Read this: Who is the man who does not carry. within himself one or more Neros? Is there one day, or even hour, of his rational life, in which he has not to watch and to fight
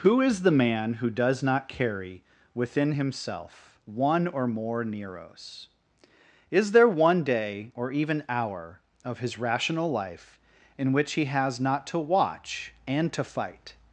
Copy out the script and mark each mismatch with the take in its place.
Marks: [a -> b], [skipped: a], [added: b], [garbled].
Who is the man who does not carry. within himself one or more Neros? Is there one day, or even hour, of his rational life, in which he has not to watch and to fight